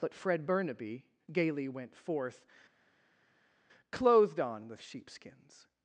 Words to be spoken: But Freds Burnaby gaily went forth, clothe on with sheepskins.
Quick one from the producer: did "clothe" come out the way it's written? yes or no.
no